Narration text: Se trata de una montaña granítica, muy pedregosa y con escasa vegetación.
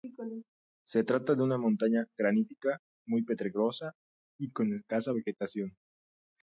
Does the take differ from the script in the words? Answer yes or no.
no